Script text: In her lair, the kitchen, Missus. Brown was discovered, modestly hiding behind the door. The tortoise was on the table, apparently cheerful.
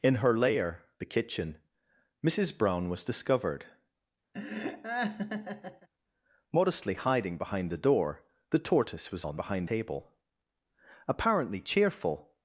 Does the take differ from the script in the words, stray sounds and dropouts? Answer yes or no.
yes